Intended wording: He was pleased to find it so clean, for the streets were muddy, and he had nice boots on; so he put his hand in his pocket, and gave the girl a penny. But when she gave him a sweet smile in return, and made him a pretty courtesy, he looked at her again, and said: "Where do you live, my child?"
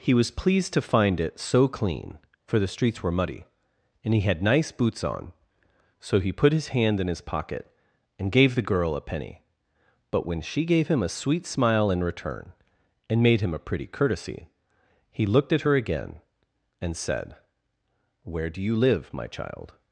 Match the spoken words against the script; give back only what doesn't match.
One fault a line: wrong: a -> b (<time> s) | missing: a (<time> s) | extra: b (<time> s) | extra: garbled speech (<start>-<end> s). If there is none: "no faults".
no faults